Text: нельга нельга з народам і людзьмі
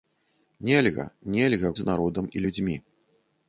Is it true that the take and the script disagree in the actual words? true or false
false